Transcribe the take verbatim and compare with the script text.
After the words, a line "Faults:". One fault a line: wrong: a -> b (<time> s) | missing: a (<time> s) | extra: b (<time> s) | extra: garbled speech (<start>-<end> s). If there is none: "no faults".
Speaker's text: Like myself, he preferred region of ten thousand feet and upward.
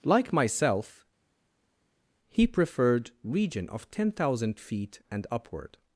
Like myself, he preferred region of ten thousand feet and upward.
Faults:
no faults